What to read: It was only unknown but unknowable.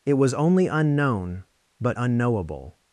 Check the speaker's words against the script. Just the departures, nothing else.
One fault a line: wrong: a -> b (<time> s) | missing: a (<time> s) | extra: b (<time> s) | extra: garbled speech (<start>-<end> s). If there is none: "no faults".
no faults